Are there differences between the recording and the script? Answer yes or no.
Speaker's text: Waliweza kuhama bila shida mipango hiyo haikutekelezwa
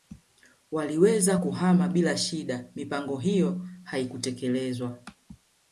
no